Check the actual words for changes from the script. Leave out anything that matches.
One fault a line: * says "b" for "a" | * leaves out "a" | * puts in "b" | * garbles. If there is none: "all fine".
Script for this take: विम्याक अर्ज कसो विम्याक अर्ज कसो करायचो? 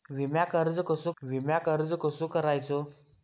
all fine